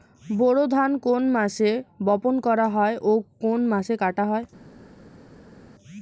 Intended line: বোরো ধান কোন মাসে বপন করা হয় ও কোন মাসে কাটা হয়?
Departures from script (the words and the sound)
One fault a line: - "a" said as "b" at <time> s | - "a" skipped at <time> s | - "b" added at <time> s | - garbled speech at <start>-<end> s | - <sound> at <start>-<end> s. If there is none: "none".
none